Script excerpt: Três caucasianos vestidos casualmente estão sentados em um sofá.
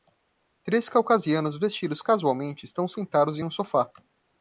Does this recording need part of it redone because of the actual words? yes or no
no